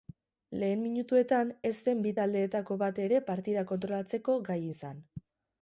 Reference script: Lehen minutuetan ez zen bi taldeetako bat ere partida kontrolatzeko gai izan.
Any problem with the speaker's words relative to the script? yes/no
no